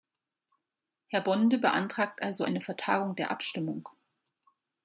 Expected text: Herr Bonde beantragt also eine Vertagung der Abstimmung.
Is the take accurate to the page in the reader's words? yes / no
yes